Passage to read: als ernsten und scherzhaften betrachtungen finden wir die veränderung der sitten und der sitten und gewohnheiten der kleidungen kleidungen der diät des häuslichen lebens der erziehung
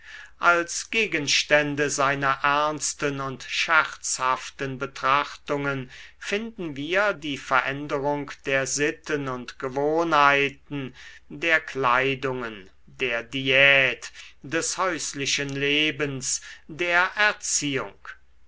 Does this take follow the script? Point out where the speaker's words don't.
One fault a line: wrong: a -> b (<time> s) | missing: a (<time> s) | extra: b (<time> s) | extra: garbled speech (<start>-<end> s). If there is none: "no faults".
extra: gegenstände seiner (0.9 s)
missing: der sitten und (9.6 s)
missing: kleidungen (12.7 s)